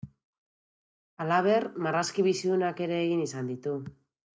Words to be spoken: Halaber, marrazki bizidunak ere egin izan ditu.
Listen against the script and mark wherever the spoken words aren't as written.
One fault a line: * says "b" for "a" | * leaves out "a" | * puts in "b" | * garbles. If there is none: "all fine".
all fine